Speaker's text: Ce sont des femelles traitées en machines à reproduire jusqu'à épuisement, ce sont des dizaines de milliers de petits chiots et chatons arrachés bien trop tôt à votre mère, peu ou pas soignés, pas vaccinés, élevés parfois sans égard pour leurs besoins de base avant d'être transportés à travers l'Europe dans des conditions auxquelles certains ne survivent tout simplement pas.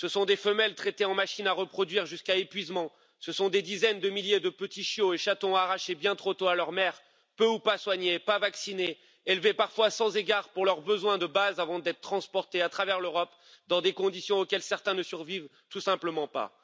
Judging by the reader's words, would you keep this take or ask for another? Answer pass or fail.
fail